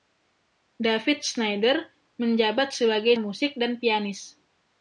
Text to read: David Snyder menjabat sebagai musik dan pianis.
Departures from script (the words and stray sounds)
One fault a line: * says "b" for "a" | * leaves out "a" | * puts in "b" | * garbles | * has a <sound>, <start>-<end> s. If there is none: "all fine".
all fine